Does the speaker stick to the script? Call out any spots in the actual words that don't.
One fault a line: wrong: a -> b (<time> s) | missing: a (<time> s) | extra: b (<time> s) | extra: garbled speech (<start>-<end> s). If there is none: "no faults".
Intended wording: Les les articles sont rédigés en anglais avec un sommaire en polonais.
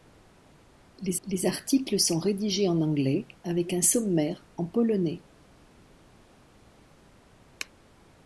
no faults